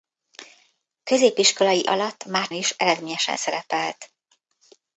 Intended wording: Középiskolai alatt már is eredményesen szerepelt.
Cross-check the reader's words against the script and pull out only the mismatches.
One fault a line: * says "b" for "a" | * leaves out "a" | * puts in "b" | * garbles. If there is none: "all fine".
all fine